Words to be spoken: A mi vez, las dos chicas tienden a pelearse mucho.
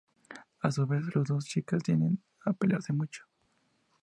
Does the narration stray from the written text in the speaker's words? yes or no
yes